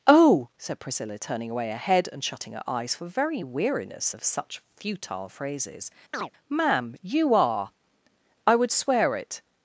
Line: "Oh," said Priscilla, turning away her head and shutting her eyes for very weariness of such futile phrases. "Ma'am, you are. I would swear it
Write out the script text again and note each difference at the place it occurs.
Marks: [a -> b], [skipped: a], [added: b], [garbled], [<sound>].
"Oh," said Priscilla, turning away her head and shutting her eyes for very weariness of such futile phrases. [chirp] "Ma'am, you are. I would swear it